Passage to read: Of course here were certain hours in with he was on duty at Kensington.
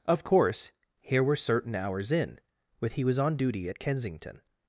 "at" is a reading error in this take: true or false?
false